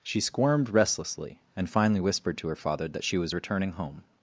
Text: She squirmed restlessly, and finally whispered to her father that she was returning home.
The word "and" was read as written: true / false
true